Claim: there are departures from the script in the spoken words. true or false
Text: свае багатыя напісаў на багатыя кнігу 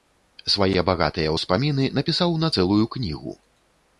true